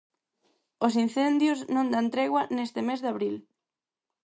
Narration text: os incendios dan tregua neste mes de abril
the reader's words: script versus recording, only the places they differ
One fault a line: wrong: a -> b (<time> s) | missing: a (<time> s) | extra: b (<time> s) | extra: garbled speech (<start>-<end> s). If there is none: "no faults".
extra: non (1.8 s)